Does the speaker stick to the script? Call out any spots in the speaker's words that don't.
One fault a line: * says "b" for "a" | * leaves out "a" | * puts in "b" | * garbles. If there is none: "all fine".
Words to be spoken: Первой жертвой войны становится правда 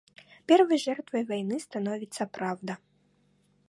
all fine